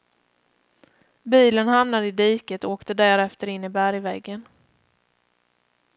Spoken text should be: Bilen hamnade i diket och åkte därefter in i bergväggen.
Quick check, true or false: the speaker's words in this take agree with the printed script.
true